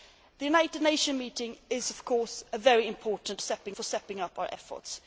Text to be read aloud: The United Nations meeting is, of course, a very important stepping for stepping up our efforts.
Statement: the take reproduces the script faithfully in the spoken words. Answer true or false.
true